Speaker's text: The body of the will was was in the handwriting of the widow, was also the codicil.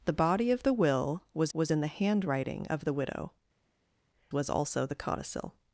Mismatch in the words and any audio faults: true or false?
false